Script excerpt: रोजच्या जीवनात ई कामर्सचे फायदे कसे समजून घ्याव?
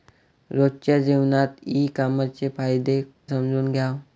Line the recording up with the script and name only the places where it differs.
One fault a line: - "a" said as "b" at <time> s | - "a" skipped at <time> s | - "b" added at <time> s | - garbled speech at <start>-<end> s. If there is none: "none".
- "कसे" skipped at 3.0 s